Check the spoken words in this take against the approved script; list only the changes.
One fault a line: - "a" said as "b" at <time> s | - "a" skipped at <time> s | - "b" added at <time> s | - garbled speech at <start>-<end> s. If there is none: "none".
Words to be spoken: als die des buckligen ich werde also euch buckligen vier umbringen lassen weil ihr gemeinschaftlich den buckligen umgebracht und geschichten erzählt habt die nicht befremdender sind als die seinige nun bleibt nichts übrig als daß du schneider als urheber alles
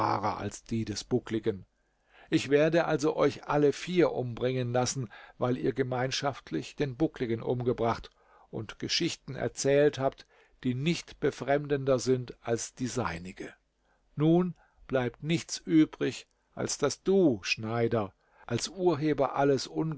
- "buckligen" said as "alle" at 3.5 s